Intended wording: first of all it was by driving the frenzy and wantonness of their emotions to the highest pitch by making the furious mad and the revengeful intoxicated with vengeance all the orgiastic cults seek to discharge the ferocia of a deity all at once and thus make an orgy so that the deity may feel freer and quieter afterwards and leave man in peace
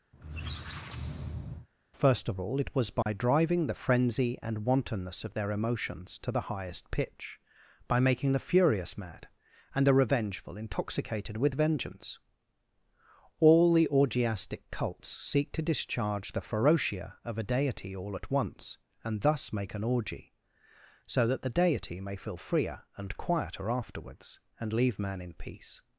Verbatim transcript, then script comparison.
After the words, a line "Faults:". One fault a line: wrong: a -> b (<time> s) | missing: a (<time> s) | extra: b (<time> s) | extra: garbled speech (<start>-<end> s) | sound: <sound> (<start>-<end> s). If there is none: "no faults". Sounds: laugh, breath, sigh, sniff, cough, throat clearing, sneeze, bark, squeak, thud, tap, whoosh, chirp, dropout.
first of all it was by driving the frenzy and wantonness of their emotions to the highest pitch by making the furious mad and the revengeful intoxicated with vengeance all the orgiastic cults seek to discharge the ferocia of a deity all at once and thus make an orgy so that the deity may feel freer and quieter afterwards and leave man in peace
Faults:
sound: squeak (0.1-1.7 s)
sound: dropout (3.0-3.1 s)